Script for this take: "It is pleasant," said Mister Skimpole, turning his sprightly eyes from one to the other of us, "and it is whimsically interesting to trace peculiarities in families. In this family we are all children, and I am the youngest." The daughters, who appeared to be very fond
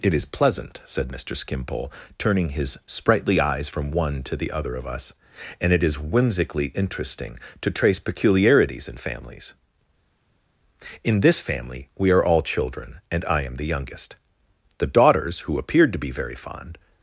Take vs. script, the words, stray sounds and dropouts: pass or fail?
pass